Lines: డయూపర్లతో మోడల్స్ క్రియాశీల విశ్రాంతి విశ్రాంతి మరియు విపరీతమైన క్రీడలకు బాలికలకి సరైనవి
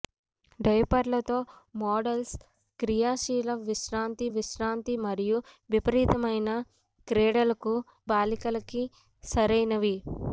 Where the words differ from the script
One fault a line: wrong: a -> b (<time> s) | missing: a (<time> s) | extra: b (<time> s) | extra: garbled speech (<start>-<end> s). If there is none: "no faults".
no faults